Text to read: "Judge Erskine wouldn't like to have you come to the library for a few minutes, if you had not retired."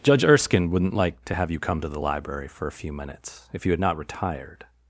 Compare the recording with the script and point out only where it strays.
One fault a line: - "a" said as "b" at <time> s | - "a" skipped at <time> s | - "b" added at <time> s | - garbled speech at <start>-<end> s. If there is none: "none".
none